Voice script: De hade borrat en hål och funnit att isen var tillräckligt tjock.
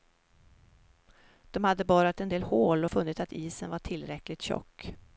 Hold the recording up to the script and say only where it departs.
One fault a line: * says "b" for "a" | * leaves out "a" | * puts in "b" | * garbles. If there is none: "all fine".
* puts in "del"